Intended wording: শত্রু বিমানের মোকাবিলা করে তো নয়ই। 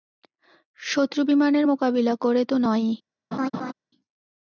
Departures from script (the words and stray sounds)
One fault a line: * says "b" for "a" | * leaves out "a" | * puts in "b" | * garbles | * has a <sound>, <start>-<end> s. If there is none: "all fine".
* has a laugh, 3.3-3.7 s